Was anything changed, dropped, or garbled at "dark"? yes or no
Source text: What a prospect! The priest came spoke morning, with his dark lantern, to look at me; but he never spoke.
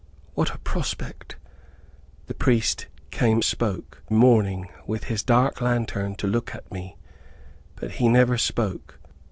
no